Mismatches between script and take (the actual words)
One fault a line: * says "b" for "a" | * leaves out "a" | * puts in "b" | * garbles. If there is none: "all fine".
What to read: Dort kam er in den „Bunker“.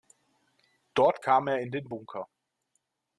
all fine